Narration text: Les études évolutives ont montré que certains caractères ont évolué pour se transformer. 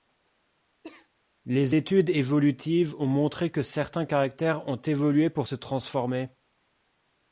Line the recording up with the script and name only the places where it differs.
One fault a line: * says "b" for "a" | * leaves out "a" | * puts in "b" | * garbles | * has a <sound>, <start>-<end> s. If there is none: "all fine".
* has a cough, 0.8-1.1 s